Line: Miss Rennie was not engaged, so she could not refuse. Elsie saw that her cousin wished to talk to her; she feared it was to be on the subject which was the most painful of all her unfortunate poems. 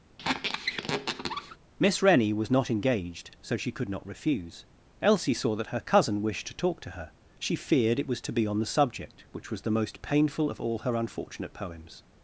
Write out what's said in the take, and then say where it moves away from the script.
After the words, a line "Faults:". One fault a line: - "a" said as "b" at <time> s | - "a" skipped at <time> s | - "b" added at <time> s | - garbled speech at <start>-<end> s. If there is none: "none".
Miss Rennie was not engaged, so she could not refuse. Elsie saw that her cousin wished to talk to her; she feared it was to be on the subject which was the most painful of all her unfortunate poems.
Faults:
none